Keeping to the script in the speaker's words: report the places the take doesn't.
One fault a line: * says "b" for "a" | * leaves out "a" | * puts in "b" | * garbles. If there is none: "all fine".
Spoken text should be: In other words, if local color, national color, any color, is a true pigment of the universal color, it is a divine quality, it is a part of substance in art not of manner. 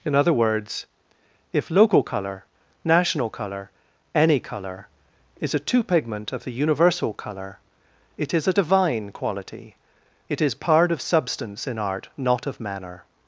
* says "two" for "true"
* leaves out "a"